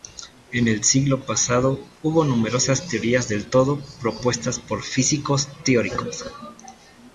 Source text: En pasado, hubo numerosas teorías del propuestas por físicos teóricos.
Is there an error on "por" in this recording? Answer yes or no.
no